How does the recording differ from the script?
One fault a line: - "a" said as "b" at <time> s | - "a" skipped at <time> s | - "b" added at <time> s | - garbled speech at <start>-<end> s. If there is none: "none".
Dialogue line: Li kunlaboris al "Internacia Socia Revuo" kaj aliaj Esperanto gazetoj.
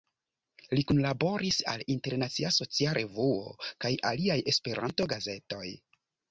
none